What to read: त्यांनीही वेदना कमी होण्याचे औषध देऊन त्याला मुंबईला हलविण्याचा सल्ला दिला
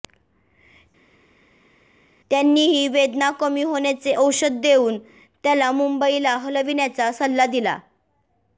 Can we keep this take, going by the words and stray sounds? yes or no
yes